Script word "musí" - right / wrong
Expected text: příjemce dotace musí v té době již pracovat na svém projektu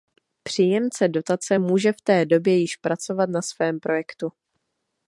wrong